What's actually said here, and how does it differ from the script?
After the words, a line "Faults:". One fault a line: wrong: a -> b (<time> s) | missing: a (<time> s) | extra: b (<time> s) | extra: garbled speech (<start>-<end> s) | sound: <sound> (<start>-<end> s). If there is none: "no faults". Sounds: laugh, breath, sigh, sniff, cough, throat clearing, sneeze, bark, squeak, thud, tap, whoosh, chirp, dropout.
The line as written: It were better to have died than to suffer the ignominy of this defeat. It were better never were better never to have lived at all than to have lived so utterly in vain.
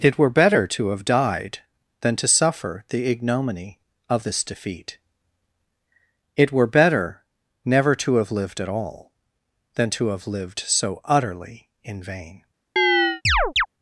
It were better to have died than to suffer the ignominy of this defeat. It were better never to have lived at all than to have lived so utterly in vain.
Faults:
missing: were better never (7.9 s)
sound: chirp (12.8-13.7 s)